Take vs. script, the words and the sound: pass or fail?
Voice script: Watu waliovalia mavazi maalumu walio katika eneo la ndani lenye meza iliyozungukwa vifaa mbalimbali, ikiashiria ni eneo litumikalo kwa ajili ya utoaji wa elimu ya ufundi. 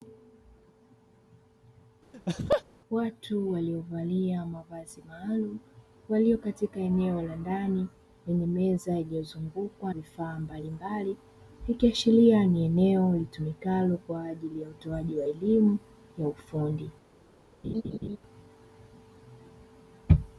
fail